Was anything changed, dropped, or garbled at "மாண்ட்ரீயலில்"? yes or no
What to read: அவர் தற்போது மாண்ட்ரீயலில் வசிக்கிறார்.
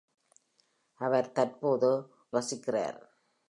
yes